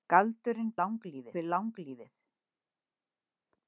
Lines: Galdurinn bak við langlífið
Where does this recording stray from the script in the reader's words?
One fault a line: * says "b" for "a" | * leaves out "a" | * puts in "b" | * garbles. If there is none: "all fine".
* says "langlífið" for "bak"